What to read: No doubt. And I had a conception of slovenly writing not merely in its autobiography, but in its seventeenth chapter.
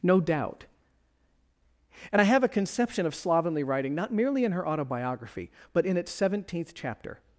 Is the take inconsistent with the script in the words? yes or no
yes